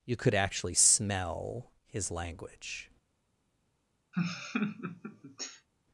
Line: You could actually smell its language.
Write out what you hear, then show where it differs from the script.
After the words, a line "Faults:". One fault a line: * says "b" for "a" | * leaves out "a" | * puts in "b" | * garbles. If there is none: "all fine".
You could actually smell his language.
Faults:
* says "his" for "its"